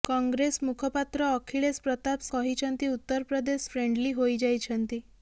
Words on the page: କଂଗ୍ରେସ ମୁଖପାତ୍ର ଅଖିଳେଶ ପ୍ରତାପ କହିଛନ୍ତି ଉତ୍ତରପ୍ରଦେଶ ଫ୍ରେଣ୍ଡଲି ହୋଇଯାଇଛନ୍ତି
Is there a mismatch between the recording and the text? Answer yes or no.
no